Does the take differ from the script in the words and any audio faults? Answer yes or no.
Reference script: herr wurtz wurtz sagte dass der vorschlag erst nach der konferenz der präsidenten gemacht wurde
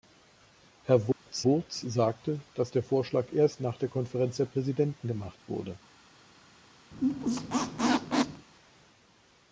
yes